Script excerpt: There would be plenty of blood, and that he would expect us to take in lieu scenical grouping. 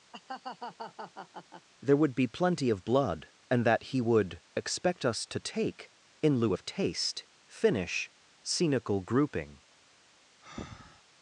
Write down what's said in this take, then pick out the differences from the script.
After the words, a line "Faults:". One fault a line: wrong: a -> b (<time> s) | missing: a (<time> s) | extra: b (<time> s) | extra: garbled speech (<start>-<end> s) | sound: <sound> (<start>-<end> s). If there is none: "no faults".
There would be plenty of blood, and that he would expect us to take in lieu of taste, finish, scenical grouping.
Faults:
sound: laugh (0.1-1.7 s)
extra: of taste finish (6.5 s)
sound: breath (10.4-11.0 s)